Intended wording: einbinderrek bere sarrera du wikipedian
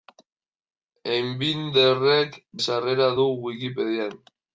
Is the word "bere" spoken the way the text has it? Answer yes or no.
no